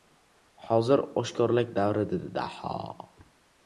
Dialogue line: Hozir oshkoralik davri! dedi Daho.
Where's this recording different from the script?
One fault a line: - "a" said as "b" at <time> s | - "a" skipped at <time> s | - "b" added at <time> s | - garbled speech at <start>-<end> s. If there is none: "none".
none